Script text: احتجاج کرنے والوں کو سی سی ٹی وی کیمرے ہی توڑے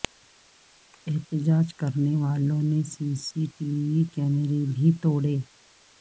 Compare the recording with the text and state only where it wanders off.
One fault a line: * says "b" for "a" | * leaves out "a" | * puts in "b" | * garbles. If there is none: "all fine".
* says "نے" for "کو"
* says "بھی" for "ہی"